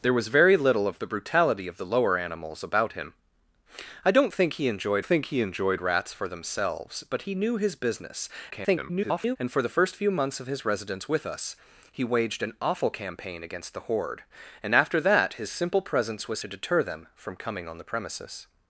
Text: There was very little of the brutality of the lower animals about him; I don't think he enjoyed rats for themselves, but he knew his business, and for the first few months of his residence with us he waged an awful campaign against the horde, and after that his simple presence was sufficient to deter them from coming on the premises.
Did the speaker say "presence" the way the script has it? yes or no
yes